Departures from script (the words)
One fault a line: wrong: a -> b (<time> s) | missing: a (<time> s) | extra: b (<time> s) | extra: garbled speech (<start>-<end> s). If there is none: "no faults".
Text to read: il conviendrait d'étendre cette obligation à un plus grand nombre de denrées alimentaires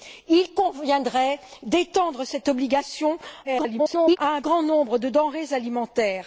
extra: garbled speech (3.4-4.2 s)
missing: plus (4.4 s)